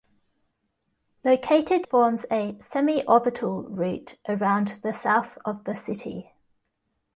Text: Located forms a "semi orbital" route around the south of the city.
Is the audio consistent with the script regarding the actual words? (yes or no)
yes